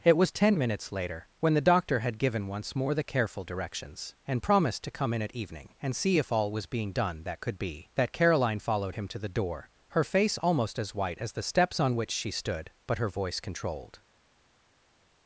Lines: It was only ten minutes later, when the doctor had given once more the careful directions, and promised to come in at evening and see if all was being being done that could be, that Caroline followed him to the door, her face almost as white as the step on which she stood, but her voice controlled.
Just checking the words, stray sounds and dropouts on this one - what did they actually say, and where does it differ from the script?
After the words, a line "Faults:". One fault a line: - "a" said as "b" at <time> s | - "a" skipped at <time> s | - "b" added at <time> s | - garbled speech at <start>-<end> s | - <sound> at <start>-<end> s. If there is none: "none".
It was ten minutes later, when the doctor had given once more the careful directions, and promised to come in at evening and see if all was being done that could be, that Caroline followed him to the door, her face almost as white as the steps on which she stood, but her voice controlled.
Faults:
- "only" skipped at 0.3 s
- "being" skipped at 6.9 s
- "step" said as "steps" at 11.4 s